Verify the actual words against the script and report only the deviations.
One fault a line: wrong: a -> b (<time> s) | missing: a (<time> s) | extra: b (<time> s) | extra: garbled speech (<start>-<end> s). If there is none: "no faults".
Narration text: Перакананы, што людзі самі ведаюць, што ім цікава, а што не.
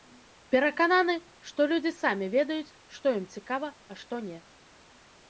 no faults